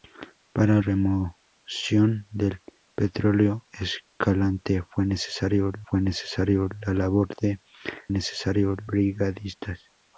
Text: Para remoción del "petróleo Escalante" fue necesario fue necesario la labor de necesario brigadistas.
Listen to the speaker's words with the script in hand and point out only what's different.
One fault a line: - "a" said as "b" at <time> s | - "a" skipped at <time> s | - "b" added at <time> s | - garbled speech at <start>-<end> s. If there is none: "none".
none